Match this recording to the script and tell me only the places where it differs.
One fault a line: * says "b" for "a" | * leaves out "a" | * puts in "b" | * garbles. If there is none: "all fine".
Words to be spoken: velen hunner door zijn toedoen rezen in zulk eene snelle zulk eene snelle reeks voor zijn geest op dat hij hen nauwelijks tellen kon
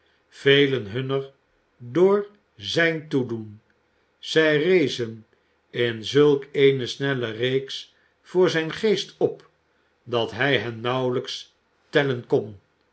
* puts in "zij"
* leaves out "zulk eene snelle"